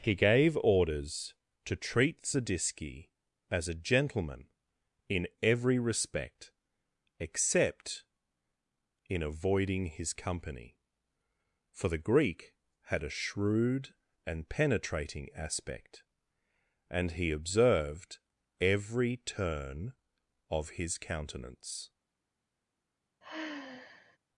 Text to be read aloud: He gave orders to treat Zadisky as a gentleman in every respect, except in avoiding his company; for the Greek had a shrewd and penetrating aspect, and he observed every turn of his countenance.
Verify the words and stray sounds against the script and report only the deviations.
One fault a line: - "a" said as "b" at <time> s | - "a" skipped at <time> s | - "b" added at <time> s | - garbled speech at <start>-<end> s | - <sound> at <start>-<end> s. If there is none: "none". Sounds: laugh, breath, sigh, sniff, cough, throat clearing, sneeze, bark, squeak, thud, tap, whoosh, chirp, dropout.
- sigh at 23.2-24.2 s